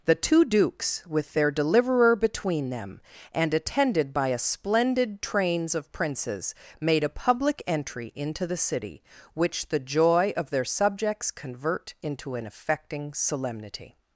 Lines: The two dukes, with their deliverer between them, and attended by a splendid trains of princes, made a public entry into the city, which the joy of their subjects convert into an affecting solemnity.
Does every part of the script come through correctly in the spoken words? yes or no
yes